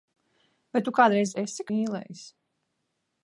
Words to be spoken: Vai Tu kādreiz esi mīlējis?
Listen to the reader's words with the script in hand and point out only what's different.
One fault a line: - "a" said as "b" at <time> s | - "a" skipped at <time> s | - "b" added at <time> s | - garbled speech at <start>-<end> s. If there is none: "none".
none